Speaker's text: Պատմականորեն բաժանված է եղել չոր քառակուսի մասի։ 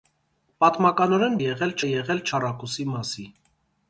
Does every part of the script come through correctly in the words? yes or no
no